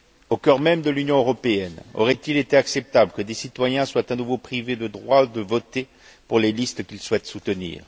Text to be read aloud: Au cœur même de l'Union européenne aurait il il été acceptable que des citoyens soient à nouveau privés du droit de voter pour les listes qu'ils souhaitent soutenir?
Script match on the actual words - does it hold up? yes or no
no